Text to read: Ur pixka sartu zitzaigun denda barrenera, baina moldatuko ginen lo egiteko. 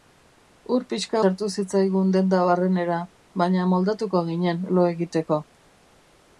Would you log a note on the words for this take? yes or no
no